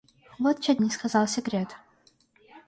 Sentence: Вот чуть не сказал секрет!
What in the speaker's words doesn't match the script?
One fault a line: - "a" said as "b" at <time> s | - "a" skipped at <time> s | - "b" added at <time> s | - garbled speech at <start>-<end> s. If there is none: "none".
none